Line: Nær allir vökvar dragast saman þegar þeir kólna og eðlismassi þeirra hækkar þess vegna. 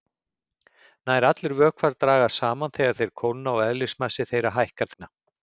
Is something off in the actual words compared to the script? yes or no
yes